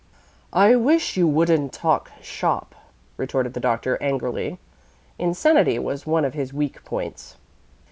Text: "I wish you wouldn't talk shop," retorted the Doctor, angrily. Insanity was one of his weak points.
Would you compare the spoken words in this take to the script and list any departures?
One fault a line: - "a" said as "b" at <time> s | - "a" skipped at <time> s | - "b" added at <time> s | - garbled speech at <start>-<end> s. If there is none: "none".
none